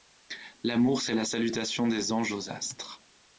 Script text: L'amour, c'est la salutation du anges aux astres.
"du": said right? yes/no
no